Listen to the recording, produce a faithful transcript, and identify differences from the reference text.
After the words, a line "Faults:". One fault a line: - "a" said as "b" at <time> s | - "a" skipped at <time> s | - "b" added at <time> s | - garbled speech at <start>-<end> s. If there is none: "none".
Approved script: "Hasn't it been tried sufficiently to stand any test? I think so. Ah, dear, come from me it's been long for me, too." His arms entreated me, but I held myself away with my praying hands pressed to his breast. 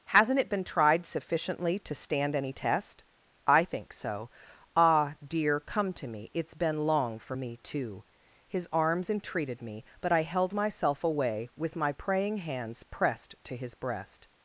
"Hasn't it been tried sufficiently to stand any test? I think so. Ah, dear, come to me it's been long for me, too." His arms entreated me, but I held myself away with my praying hands pressed to his breast.
Faults:
- "from" said as "to" at 5.9 s